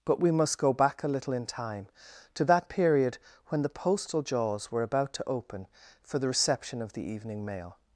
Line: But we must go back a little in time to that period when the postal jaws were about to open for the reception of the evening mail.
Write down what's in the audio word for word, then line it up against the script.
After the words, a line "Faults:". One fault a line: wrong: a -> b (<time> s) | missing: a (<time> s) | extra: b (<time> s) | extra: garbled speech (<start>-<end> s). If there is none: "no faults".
But we must go back a little in time to that period when the postal jaws were about to open for the reception of the evening mail.
Faults:
no faults